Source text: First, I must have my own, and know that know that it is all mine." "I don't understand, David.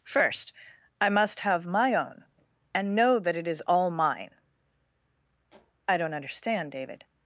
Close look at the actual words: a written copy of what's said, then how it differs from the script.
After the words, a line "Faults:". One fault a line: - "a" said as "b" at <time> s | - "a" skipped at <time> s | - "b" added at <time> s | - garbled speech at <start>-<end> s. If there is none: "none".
First, I must have my own, and know that it is all mine." "I don't understand, David.
Faults:
- "know that" skipped at 3.4 s